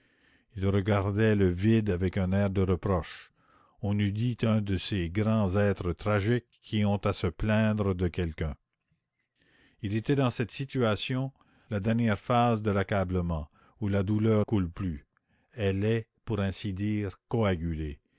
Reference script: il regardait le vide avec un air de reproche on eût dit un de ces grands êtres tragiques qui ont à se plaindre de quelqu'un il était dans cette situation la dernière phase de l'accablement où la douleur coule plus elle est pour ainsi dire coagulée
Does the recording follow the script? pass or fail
pass